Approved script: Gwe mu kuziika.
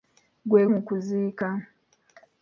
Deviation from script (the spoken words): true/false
false